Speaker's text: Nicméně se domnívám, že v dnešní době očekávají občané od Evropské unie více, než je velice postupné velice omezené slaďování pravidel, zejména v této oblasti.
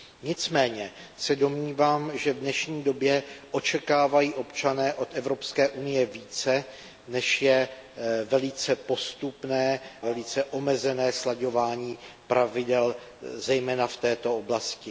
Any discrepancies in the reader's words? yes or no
no